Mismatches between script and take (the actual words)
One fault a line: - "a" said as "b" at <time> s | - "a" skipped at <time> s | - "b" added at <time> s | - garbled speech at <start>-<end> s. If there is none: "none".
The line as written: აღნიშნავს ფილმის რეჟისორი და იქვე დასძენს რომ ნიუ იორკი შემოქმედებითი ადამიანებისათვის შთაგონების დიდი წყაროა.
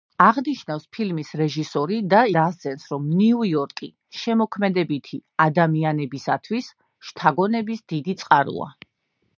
- "იქვე" skipped at 2.2 s